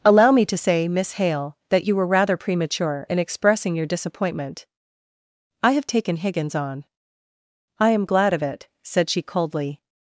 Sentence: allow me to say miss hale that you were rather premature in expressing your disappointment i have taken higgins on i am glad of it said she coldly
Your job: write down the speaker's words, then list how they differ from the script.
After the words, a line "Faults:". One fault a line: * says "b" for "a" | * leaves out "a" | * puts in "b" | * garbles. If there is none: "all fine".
allow me to say miss hale that you were rather premature in expressing your disappointment i have taken higgins on i am glad of it said she coldly
Faults:
all fine